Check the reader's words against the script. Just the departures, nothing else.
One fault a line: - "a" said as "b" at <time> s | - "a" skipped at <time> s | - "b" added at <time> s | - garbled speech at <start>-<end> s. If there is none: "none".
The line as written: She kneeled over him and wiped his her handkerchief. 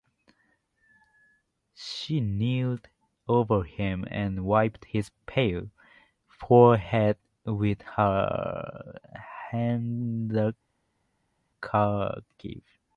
- "pale forehead with" added at 5.3 s